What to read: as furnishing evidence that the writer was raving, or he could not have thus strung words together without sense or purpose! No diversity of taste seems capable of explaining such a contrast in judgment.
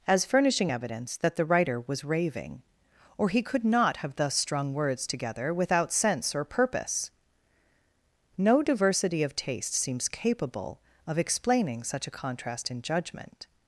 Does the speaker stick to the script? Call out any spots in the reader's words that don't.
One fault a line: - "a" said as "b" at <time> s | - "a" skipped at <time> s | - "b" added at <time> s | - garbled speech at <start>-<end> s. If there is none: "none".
none